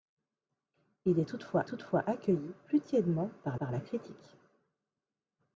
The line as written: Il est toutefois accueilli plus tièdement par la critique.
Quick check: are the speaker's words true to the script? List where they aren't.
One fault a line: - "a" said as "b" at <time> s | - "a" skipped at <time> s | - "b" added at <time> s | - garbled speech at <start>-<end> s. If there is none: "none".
- "toutefois" added at 1.7 s
- "par" added at 3.6 s